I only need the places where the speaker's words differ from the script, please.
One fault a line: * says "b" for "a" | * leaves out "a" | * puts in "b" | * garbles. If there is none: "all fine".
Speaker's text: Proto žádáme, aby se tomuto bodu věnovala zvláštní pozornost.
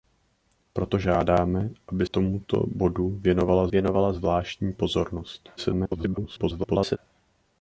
* leaves out "se"
* puts in "věnovala"
* garbles